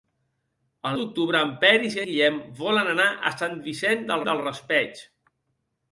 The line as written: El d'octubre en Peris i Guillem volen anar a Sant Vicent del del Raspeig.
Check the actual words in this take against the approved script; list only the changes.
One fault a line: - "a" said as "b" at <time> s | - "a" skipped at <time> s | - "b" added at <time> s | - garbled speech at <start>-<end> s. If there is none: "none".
none